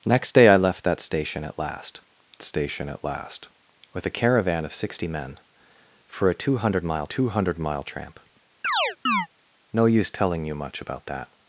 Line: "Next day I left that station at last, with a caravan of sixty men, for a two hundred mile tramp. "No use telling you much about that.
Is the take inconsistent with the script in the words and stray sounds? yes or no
yes